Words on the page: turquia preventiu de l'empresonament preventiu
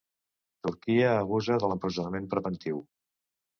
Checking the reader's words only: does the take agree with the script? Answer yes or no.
no